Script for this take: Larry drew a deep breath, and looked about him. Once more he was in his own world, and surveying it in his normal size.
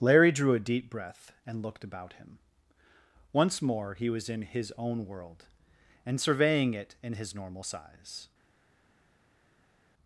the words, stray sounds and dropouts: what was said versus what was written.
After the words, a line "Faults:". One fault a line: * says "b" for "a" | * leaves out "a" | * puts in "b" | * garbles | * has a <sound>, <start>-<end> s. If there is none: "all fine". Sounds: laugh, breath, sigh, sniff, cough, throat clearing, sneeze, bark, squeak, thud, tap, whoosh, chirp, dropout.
Larry drew a deep breath, and looked about him. Once more he was in his own world, and surveying it in his normal size.
Faults:
all fine